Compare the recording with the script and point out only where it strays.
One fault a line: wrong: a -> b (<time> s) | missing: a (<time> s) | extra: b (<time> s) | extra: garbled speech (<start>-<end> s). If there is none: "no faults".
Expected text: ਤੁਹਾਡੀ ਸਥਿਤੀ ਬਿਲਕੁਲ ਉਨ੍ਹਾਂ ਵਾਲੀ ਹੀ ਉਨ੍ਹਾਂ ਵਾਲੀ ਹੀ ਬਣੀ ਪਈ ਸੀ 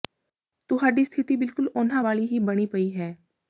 missing: ਉਨ੍ਹਾਂ ਵਾਲੀ ਹੀ (2.4 s)
wrong: ਸੀ -> ਹੈ (3.0 s)